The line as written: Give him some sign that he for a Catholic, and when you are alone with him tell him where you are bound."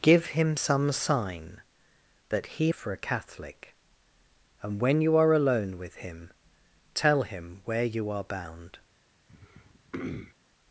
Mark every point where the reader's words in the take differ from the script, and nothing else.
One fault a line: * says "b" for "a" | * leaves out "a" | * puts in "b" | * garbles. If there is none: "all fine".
all fine